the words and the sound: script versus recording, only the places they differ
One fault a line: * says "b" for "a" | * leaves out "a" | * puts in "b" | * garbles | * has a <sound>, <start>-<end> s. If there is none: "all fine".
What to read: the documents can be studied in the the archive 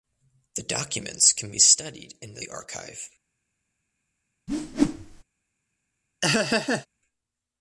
* has a whoosh, 4.5-5.2 s
* has a laugh, 6.2-6.9 s